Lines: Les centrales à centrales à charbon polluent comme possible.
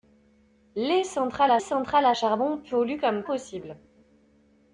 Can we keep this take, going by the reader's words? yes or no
yes